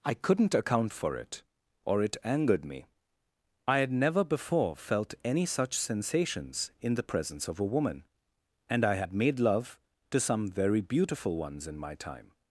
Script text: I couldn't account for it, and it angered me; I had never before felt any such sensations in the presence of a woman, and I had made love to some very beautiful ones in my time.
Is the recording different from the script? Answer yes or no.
yes